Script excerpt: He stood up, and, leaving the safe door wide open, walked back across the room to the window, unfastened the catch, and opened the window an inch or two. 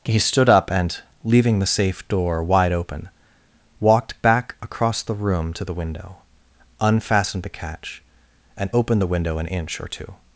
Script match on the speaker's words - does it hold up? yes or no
yes